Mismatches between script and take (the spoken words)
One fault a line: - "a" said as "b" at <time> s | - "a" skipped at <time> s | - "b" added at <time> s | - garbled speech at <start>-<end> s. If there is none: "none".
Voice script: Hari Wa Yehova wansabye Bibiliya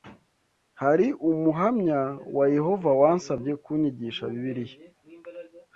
- "Umuhamya" added at 1.3 s
- "kunyigisha" added at 3.6 s